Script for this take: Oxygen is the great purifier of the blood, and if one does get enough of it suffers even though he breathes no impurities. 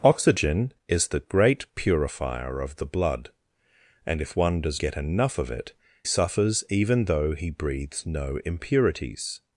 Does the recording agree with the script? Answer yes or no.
yes